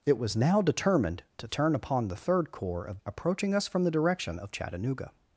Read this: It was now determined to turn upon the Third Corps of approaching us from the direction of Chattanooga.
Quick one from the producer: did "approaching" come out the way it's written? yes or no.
yes